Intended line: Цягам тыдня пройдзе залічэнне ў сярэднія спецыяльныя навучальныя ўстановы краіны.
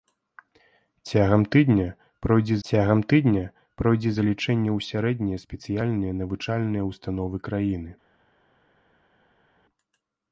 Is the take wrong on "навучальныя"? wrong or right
right